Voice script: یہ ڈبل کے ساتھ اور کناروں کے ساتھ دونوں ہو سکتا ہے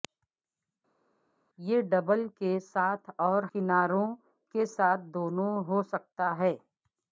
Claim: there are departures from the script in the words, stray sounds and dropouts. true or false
false